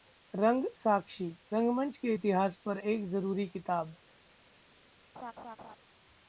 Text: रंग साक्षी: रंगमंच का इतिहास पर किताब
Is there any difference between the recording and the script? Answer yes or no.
yes